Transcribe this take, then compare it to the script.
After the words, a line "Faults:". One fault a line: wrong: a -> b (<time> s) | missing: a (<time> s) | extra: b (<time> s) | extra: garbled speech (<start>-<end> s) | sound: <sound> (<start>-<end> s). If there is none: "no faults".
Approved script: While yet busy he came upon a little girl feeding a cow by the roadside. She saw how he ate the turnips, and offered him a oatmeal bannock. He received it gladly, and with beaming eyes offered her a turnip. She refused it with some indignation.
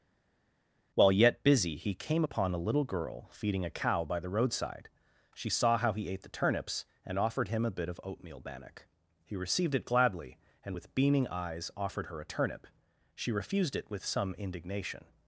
While yet busy he came upon a little girl feeding a cow by the roadside. She saw how he ate the turnips, and offered him a bit of oatmeal bannock. He received it gladly, and with beaming eyes offered her a turnip. She refused it with some indignation.
Faults:
extra: bit of (7.7 s)